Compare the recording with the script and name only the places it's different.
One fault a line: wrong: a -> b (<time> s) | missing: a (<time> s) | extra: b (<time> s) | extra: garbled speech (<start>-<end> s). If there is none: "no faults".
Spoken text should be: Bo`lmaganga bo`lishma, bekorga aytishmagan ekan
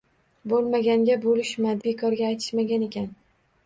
no faults